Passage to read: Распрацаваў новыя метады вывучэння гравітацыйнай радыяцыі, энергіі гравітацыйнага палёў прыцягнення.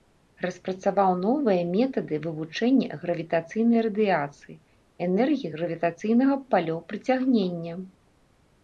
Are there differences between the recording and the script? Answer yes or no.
no